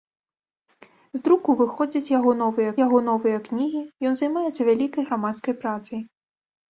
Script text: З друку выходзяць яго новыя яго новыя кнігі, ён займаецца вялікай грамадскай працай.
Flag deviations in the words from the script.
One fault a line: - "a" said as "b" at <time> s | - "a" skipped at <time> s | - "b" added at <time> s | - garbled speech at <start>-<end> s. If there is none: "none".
none